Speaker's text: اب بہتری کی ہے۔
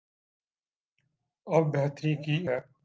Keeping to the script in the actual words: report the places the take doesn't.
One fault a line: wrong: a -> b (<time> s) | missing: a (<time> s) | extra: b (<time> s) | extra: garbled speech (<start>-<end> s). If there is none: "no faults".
no faults